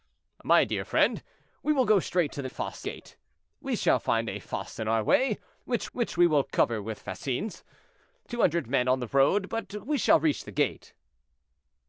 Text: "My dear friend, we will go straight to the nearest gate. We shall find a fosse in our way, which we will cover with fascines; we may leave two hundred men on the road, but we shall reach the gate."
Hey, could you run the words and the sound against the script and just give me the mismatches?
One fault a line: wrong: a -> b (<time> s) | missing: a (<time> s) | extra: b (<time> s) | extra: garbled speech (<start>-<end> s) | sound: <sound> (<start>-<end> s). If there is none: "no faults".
wrong: nearest -> fosse (2.4 s)
extra: which (5.9 s)
missing: we may leave (7.6 s)